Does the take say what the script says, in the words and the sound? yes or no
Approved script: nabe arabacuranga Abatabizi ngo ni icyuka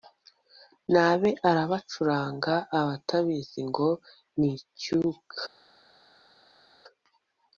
yes